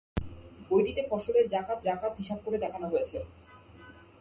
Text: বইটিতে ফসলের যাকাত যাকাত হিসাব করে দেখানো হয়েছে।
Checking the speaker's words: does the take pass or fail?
pass